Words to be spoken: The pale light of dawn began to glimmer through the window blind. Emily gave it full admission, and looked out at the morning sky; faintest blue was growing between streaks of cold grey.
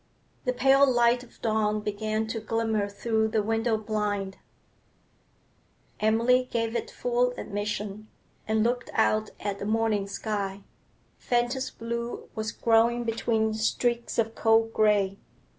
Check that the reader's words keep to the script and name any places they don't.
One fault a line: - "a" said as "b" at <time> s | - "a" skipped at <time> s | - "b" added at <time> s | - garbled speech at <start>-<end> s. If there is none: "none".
none